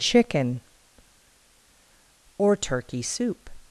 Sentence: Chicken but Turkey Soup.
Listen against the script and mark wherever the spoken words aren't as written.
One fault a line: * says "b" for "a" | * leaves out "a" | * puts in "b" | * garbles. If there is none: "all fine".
* says "or" for "but"